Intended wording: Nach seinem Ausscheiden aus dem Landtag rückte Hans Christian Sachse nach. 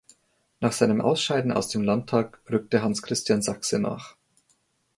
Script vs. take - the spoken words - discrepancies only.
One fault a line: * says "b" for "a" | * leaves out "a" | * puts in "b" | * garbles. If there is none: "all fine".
all fine